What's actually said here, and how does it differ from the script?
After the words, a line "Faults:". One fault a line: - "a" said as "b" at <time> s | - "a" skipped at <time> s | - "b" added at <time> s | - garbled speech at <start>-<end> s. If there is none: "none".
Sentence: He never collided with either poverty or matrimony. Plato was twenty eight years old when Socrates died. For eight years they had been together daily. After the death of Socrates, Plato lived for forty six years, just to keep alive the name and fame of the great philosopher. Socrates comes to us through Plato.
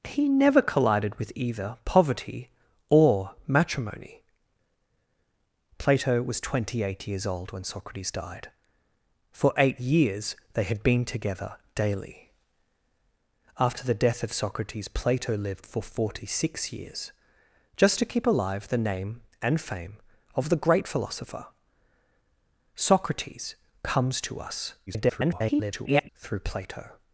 He never collided with either poverty or matrimony. Plato was twenty eight years old when Socrates died. For eight years they had been together daily. After the death of Socrates, Plato lived for forty six years, just to keep alive the name and fame of the great philosopher. Socrates comes to us [garbled] through Plato.
Faults:
- garbled speech at 24.9-26.1 s